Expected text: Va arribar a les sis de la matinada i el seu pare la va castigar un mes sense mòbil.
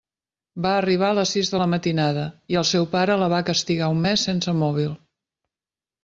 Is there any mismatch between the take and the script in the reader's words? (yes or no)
no